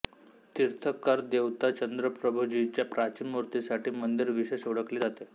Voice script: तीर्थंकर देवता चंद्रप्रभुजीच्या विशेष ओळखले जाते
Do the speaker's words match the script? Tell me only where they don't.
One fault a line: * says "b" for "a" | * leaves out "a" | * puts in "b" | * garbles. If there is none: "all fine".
* puts in "प्राचीन मूर्तीसाठी मंदिर"